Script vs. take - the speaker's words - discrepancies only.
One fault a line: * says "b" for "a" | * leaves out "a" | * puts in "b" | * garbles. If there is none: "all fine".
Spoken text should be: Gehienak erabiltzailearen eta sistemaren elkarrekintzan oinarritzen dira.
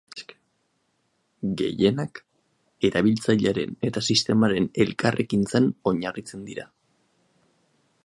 all fine